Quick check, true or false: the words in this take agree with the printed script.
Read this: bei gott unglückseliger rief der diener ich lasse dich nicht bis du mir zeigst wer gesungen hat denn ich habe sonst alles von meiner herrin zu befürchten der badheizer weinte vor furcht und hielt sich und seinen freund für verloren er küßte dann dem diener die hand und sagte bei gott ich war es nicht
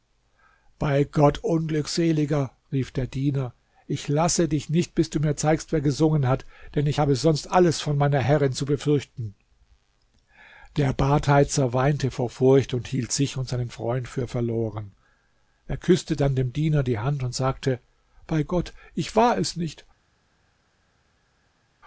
true